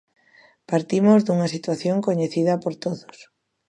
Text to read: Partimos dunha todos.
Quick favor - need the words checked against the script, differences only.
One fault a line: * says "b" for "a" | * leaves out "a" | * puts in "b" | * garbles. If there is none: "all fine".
* puts in "situación coñecida por"